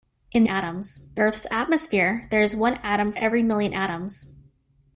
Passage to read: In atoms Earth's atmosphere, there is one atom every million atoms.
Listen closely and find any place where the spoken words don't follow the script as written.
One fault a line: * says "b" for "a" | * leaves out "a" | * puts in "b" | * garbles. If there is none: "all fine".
all fine